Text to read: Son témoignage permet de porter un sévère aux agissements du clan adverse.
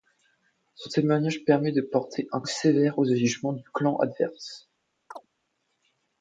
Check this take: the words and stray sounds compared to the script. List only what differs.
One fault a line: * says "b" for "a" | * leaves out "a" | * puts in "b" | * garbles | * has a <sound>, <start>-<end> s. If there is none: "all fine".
* has a chirp, 5.1-5.3 s